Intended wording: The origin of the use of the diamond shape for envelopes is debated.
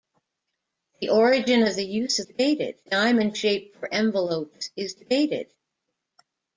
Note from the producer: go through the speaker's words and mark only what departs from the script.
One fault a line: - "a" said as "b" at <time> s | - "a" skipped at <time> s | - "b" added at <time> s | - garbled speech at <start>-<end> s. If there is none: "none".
- "the" said as "debated" at 2.2 s